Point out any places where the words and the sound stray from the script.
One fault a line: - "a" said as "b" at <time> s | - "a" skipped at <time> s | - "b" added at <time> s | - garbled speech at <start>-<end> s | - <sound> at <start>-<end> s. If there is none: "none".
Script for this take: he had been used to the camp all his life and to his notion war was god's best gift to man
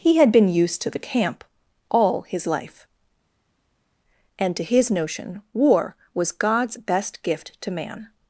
none